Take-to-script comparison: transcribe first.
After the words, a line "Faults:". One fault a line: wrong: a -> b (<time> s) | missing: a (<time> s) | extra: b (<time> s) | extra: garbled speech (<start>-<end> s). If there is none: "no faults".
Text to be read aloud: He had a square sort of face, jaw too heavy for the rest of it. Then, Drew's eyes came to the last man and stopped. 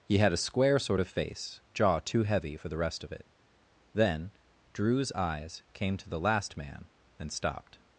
He had a square sort of face, jaw too heavy for the rest of it. Then, Drew's eyes came to the last man and stopped.
Faults:
no faults